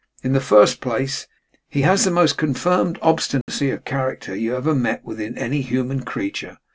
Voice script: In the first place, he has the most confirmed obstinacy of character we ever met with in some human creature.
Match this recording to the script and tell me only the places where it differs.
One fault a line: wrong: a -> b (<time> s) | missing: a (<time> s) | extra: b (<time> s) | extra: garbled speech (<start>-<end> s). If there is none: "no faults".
wrong: we -> you (4.3 s)
wrong: some -> any (5.4 s)